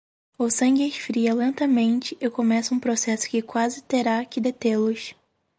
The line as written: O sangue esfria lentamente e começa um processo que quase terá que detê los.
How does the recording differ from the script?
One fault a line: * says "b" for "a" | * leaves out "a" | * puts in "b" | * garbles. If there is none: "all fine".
all fine